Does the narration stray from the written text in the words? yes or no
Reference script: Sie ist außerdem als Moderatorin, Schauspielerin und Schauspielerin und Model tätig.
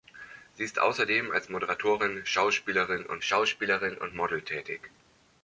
no